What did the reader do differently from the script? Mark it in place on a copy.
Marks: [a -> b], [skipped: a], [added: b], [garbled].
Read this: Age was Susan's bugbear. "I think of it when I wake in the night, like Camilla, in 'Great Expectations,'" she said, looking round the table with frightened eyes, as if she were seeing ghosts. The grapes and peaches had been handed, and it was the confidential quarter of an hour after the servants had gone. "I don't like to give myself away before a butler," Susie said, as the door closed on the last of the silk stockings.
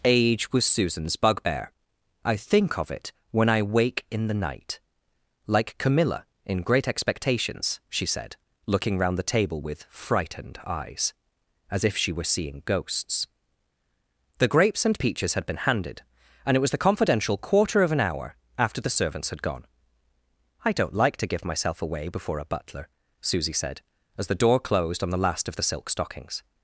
Age was Susan's bugbear. "I think of it when I wake in the night, like Camilla, in 'Great Expectations,'" she said, looking round the table with frightened eyes, as if she were seeing ghosts. The grapes and peaches had been handed, and it was the confidential quarter of an hour after the servants had gone. "I don't like to give myself away before a butler," Susie said, as the door closed on the last of the silk stockings.